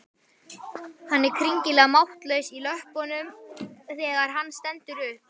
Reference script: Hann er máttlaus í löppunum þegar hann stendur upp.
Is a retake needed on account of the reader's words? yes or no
yes